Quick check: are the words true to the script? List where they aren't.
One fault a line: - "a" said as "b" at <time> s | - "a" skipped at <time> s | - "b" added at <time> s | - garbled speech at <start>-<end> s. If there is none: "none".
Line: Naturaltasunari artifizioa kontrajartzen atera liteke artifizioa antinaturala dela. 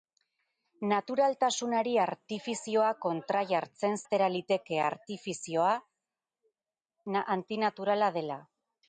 none